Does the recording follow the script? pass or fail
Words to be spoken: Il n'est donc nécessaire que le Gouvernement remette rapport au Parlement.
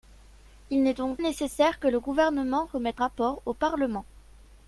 pass